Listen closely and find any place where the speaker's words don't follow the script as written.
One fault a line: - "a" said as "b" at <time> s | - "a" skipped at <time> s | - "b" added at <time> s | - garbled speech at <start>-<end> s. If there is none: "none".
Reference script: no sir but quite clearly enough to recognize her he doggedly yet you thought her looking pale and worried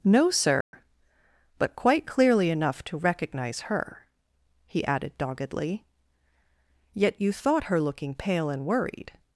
- "added" added at 4.8 s